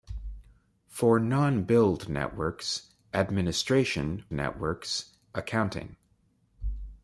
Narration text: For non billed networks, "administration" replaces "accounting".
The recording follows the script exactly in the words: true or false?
false